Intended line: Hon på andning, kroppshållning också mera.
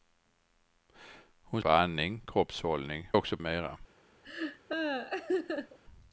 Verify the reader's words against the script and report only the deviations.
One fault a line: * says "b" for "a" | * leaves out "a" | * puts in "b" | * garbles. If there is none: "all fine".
all fine